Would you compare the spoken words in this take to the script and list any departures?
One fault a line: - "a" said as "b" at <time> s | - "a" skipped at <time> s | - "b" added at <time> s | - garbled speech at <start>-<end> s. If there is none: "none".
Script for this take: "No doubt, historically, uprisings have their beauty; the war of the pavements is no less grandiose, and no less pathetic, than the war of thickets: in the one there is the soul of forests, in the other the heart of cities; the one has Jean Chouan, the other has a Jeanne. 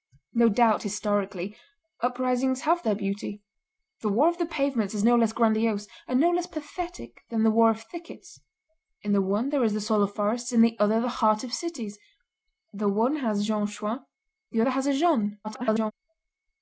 - garbled speech at 15.4-15.9 s